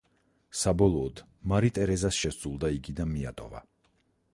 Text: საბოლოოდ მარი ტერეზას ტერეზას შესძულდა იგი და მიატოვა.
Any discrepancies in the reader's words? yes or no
yes